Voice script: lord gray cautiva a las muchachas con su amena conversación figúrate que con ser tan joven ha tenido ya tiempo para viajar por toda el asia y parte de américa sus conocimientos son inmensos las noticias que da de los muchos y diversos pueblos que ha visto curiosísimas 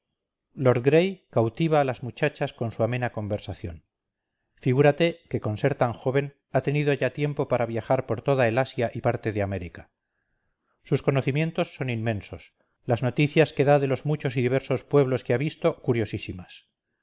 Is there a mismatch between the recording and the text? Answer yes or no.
no